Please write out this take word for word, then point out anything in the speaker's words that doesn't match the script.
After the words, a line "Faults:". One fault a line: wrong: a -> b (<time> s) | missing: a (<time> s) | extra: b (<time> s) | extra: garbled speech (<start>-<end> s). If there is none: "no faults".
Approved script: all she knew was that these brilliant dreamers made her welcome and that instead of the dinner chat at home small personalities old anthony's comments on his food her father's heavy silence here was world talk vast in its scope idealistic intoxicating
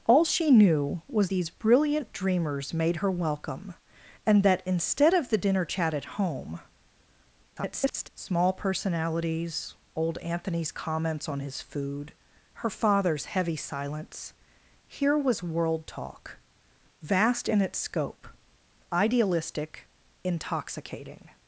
all she knew was these brilliant dreamers made her welcome and that instead of the dinner chat at home [garbled] small personalities old anthony's comments on his food her father's heavy silence here was world talk vast in its scope idealistic intoxicating
Faults:
missing: that (1.3 s)
extra: garbled speech (7.5-8.1 s)